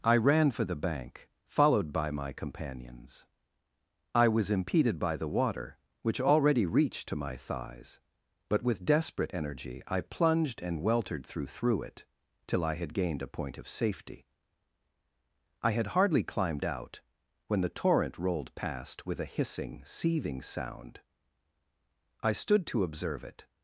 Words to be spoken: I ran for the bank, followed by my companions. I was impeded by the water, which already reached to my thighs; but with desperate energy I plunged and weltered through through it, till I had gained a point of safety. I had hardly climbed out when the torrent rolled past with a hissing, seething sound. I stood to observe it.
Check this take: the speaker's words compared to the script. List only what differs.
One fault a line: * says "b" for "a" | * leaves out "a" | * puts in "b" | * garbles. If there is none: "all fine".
all fine